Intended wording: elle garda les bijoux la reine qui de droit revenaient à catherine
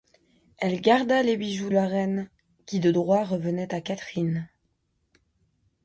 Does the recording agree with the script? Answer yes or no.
yes